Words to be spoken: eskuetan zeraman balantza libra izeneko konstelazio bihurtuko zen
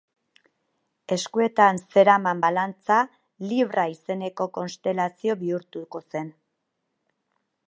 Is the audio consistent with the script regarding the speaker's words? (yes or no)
yes